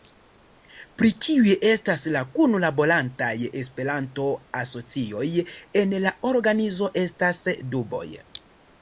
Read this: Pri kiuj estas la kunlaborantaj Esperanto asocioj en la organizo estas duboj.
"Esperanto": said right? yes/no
yes